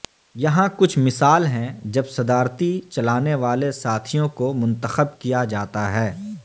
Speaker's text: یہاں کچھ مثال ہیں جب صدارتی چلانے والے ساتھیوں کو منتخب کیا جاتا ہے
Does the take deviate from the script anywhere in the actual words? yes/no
no